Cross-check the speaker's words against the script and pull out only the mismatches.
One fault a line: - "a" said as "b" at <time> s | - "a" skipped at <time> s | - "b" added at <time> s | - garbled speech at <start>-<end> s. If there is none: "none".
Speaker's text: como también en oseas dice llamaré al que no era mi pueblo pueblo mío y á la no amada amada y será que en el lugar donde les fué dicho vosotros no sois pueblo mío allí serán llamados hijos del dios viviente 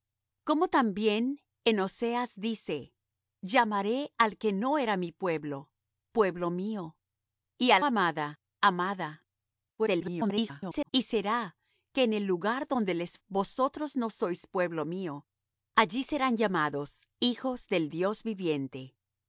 - "la no" skipped at 7.8 s
- garbled speech at 9.8-10.9 s
- "fué dicho" skipped at 13.2 s